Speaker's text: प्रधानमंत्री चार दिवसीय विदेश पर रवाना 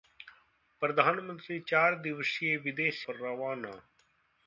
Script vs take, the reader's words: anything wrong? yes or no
no